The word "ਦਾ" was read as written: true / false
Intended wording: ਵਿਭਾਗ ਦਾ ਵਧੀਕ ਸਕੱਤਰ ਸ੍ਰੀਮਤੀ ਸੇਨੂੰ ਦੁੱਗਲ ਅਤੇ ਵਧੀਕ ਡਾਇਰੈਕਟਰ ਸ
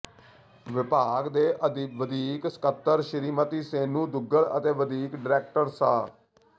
false